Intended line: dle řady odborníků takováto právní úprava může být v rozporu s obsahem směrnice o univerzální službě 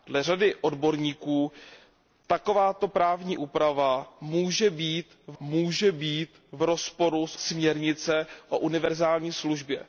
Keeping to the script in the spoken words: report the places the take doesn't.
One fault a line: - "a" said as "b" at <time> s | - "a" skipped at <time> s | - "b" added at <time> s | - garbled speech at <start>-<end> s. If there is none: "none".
- "může být v" added at 5.4 s
- "obsahem" skipped at 7.4 s